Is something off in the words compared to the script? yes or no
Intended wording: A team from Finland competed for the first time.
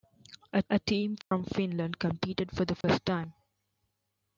yes